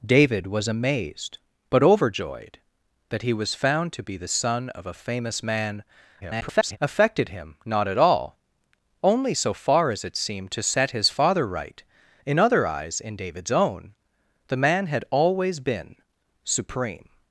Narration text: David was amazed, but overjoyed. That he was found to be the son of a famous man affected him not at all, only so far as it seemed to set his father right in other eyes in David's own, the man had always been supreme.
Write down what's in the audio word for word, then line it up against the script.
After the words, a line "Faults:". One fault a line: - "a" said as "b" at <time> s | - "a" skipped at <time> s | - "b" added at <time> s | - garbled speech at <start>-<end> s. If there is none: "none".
David was amazed, but overjoyed. That he was found to be the son of a famous man [garbled] affected him not at all, only so far as it seemed to set his father right in other eyes in David's own, the man had always been supreme.
Faults:
- garbled speech at 6.2-6.8 s